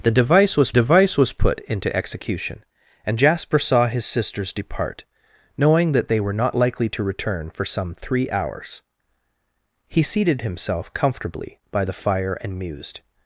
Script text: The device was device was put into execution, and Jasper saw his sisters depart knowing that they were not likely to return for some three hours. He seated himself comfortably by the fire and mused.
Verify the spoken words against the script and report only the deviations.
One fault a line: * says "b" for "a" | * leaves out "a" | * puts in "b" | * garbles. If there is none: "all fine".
all fine